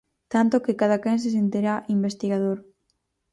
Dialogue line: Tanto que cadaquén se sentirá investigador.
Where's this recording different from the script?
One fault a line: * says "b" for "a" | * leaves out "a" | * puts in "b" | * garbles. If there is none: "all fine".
all fine